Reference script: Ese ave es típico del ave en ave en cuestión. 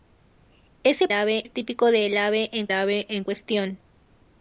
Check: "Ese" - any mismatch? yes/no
no